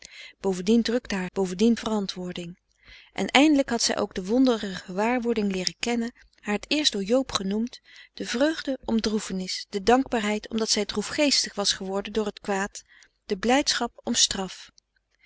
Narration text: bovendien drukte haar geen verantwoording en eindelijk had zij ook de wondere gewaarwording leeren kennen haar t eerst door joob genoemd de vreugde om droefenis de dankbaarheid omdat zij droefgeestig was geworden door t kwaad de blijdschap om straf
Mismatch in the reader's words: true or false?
true